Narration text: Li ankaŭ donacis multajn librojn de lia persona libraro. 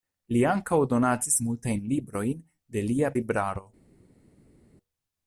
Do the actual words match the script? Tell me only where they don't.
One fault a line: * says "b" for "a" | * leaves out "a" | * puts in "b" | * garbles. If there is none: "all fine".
* leaves out "persona"